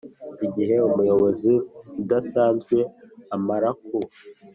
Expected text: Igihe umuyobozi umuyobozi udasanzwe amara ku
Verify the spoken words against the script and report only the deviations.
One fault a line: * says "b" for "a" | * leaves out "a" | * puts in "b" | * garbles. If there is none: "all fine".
* leaves out "umuyobozi"